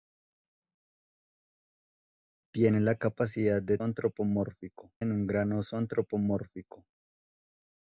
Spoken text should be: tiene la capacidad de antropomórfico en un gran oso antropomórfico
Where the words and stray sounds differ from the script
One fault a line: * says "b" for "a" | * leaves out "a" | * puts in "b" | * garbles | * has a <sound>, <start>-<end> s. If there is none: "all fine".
all fine